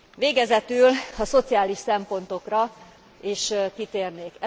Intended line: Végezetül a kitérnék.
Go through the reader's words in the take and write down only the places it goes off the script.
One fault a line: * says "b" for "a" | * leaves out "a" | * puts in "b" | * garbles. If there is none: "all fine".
* puts in "szociális szempontokra is"